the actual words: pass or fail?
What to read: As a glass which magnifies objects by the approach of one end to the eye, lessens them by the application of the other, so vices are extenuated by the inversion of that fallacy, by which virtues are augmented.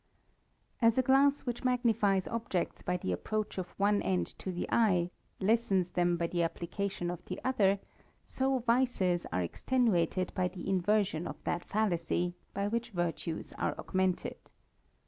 pass